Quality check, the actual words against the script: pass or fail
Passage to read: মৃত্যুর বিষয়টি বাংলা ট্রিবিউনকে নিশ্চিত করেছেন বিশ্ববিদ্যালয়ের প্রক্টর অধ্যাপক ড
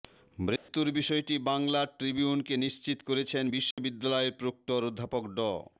pass